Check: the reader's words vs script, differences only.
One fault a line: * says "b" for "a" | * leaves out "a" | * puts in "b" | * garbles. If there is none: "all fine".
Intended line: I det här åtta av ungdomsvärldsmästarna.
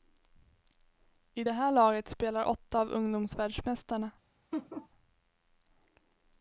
* puts in "laget spelar"